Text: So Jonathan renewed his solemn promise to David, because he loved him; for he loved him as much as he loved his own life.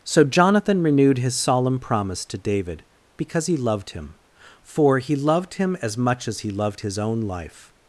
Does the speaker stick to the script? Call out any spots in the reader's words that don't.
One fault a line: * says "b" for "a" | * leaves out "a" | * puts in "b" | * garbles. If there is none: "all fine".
all fine